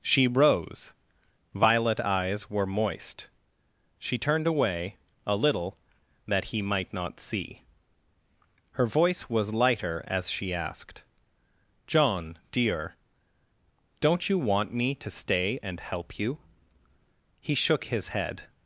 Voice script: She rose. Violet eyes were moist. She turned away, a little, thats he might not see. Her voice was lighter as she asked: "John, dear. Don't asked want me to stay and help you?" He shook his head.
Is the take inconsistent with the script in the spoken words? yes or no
yes